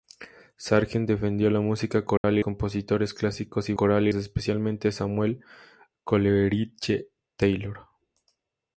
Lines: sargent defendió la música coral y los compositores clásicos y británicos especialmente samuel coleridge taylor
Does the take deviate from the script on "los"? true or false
true